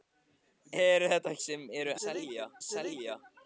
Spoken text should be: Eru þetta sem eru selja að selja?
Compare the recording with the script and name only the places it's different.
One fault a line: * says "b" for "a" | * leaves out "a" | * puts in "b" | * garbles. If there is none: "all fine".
all fine